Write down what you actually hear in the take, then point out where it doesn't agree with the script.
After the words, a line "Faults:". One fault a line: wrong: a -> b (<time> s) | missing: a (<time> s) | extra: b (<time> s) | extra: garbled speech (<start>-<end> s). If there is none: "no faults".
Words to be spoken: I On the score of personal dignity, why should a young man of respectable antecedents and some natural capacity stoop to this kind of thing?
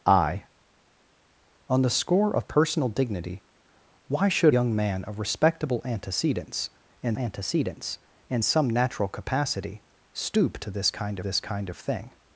I On the score of personal dignity, why should young man of respectable antecedents and antecedents and some natural capacity stoop to this kind this kind of thing?
Faults:
missing: a (4.5 s)
extra: antecedents and (7.2 s)
extra: this kind (11.2 s)